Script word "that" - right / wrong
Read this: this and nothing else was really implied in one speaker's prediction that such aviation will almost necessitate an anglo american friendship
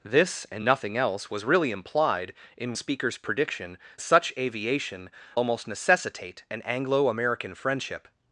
wrong